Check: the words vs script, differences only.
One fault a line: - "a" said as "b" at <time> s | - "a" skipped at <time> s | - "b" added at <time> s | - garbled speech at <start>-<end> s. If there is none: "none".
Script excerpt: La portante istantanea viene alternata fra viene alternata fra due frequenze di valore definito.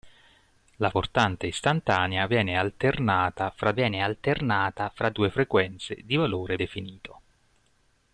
none